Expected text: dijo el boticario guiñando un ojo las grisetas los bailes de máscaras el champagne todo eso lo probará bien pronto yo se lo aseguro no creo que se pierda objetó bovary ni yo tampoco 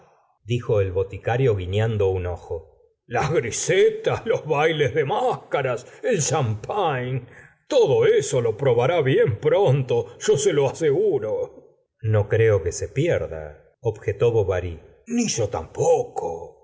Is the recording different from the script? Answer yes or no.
no